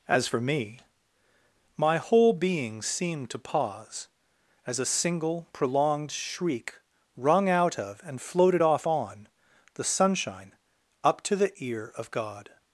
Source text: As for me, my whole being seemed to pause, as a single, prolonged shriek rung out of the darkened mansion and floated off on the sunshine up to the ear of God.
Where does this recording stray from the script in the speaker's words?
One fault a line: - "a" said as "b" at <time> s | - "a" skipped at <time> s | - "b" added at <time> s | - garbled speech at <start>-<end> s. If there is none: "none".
- "the darkened mansion" skipped at 8.0 s